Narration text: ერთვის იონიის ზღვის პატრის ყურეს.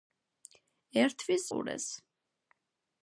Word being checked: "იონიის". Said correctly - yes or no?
no